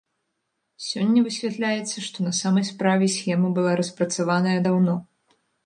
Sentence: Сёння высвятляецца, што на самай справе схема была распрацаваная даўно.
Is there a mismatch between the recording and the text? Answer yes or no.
no